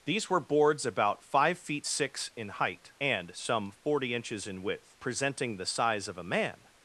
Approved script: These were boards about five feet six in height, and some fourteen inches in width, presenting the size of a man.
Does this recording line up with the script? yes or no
no